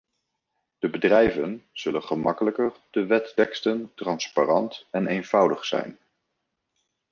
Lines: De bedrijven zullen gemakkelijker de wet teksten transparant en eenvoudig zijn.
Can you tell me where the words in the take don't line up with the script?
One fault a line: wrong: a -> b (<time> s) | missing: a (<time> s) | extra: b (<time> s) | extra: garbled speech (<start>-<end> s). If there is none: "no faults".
no faults